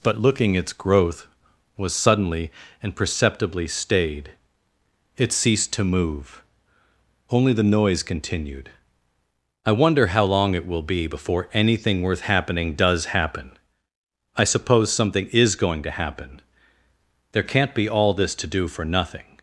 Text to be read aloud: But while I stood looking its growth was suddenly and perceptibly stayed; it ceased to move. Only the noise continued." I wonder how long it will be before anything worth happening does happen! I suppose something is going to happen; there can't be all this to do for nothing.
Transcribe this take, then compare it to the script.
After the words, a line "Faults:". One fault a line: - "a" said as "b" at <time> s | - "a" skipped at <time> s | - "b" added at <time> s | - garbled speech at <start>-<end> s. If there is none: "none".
But looking its growth was suddenly and perceptibly stayed; it ceased to move. Only the noise continued." I wonder how long it will be before anything worth happening does happen! I suppose something is going to happen; there can't be all this to do for nothing.
Faults:
- "while I stood" skipped at 0.2 s